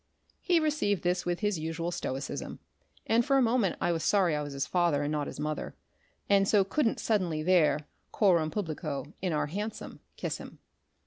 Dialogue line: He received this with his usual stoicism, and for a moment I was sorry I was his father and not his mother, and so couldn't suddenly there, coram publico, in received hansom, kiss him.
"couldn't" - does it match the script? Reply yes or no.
yes